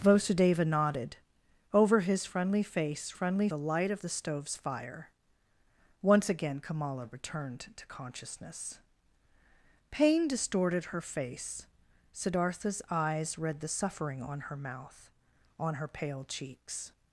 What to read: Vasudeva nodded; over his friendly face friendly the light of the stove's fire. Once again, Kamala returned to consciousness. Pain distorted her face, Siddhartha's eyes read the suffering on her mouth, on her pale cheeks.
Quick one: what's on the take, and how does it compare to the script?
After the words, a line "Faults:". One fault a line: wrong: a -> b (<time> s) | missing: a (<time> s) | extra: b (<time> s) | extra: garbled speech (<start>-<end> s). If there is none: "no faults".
Vasudeva nodded; over his friendly face friendly the light of the stove's fire. Once again, Kamala returned to consciousness. Pain distorted her face, Siddhartha's eyes read the suffering on her mouth, on her pale cheeks.
Faults:
no faults